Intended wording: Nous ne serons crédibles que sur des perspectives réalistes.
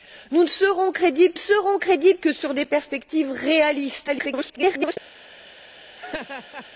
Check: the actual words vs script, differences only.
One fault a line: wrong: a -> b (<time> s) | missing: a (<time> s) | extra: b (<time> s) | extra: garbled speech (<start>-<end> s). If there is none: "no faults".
extra: serons crédibles (1.4 s)
extra: garbled speech (4.1-5.0 s)